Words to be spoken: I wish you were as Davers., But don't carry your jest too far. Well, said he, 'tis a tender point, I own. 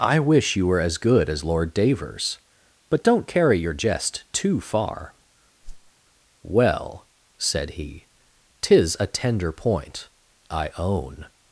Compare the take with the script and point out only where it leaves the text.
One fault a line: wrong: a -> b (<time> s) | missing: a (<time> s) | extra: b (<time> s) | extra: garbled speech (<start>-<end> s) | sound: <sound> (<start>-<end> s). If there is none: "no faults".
extra: good as Lord (1.0 s)
sound: whoosh (5.6-5.9 s)